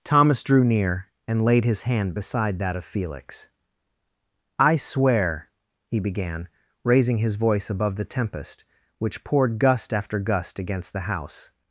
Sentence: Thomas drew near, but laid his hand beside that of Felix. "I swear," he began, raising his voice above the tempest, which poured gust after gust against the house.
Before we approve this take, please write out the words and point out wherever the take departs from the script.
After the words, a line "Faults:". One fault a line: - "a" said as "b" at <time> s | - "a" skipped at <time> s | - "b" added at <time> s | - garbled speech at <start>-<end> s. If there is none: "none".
Thomas drew near, and laid his hand beside that of Felix. "I swear," he began, raising his voice above the tempest, which poured gust after gust against the house.
Faults:
- "but" said as "and" at 1.3 s